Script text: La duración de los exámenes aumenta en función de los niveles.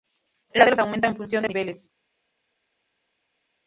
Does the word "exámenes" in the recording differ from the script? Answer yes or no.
yes